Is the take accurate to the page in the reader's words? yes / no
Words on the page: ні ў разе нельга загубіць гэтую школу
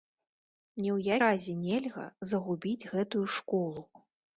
yes